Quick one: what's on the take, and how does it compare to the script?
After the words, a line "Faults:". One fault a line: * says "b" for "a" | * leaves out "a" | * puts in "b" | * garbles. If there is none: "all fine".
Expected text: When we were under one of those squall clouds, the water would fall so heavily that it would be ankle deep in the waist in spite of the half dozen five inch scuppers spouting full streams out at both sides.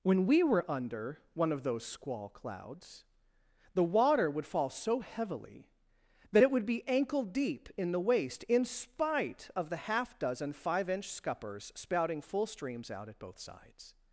When we were under one of those squall clouds, the water would fall so heavily that it would be ankle deep in the waist in spite of the half dozen five inch scuppers spouting full streams out at both sides.
Faults:
all fine